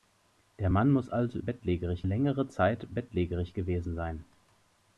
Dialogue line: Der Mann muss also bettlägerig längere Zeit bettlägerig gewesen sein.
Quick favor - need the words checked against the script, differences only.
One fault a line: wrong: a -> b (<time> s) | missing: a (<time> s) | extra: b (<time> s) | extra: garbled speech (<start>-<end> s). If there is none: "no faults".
no faults